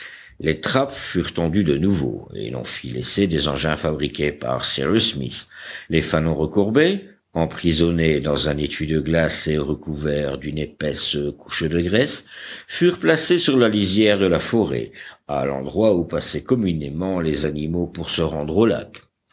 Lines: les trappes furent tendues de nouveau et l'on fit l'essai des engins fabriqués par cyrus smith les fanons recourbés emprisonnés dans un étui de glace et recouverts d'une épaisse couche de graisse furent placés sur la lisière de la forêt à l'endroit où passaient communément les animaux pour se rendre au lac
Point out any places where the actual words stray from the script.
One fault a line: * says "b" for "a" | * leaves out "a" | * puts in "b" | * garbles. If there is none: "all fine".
all fine